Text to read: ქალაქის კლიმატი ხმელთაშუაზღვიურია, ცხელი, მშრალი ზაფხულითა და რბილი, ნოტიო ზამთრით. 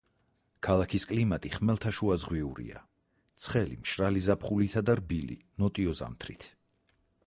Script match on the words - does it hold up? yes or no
yes